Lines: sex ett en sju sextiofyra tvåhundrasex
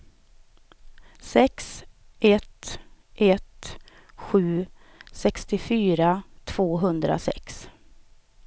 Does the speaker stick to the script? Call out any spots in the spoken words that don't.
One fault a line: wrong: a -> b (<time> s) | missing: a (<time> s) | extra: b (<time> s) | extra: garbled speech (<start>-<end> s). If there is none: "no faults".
wrong: en -> ett (3.1 s)